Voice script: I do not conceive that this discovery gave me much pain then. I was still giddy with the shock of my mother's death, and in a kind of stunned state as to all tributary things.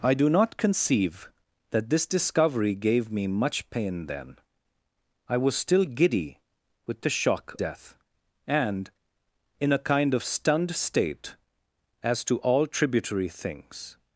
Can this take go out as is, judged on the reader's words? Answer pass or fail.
fail